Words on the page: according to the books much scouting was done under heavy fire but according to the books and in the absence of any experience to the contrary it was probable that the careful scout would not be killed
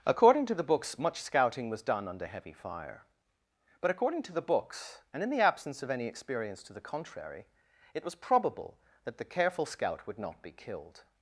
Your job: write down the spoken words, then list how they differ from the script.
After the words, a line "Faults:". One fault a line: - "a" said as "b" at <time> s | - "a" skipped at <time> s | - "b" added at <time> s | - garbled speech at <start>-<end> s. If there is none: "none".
according to the books much scouting was done under heavy fire but according to the books and in the absence of any experience to the contrary it was probable that the careful scout would not be killed
Faults:
none